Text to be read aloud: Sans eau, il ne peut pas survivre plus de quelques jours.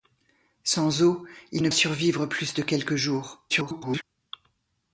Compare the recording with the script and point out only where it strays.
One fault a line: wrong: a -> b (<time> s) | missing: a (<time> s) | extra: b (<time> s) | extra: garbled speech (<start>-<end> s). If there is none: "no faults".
missing: peut pas (1.7 s)
extra: garbled speech (3.5-4.0 s)